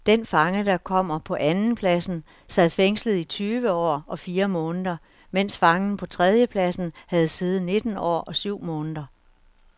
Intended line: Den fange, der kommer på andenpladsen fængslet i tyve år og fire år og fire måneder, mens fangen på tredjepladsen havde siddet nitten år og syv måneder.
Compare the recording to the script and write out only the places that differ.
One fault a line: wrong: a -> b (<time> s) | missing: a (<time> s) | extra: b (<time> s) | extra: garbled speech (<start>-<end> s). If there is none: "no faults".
extra: sad (2.5 s)
missing: år og fire (4.5 s)